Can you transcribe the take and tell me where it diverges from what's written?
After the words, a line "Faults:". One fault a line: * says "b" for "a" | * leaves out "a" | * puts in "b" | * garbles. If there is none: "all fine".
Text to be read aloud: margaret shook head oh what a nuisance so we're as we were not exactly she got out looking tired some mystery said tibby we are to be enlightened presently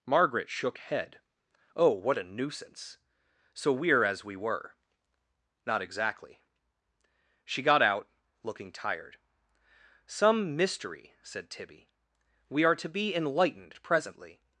margaret shook head oh what a nuisance so we're as we were not exactly she got out looking tired some mystery said tibby we are to be enlightened presently
Faults:
all fine